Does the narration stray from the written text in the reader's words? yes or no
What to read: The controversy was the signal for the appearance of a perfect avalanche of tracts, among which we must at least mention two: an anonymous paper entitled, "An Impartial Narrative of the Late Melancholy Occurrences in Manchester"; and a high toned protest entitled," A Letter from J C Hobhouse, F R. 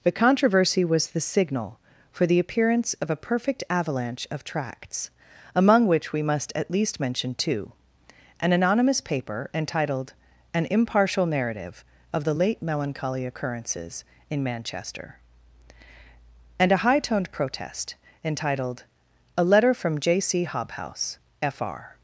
no